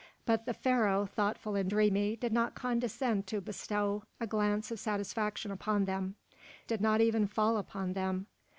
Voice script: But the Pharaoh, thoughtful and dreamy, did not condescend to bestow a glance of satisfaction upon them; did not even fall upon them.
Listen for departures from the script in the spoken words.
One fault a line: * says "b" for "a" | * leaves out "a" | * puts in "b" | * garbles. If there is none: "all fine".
all fine